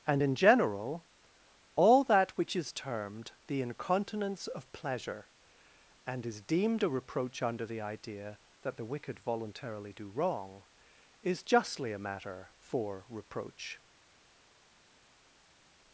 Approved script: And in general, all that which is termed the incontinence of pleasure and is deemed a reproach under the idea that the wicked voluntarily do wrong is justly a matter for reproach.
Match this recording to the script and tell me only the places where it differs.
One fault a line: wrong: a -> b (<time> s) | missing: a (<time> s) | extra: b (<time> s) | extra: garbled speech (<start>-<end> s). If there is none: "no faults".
no faults